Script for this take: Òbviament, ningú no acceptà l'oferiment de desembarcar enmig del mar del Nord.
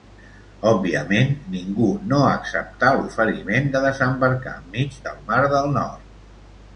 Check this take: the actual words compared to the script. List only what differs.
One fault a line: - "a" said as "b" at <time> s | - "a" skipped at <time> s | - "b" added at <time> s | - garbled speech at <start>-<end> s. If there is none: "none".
none